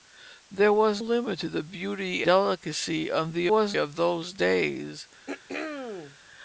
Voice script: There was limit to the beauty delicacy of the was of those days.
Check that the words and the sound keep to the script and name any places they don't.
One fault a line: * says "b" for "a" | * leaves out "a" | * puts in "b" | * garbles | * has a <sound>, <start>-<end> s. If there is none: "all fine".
* has a throat clearing, 5.3-6.2 s